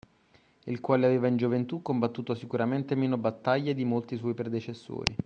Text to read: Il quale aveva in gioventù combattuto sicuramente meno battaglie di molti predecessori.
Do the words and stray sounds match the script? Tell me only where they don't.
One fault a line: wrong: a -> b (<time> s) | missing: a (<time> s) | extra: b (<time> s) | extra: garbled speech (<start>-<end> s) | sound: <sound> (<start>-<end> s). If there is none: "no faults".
extra: suoi (4.2 s)